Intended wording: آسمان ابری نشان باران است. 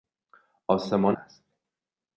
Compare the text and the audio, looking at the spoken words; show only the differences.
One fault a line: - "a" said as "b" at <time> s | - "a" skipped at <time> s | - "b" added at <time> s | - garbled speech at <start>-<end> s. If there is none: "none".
- "ابری نشان باران" skipped at 1.2 s